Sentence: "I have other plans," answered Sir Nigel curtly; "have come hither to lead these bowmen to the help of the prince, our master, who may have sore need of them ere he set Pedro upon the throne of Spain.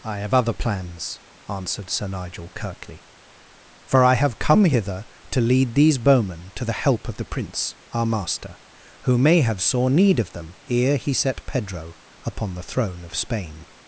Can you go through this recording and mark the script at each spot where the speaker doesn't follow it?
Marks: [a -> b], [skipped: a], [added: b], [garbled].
"I have other plans," answered Sir Nigel curtly; [added: for I] "have come hither to lead these bowmen to the help of the prince, our master, who may have sore need of them ere he set Pedro upon the throne of Spain.